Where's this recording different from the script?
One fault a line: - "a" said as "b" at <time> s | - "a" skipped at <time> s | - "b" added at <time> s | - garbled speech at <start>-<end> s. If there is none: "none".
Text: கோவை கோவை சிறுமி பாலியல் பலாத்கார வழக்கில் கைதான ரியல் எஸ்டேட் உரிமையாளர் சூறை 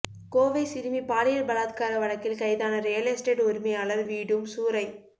- "கோவை" skipped at 0.6 s
- "வீடும்" added at 4.1 s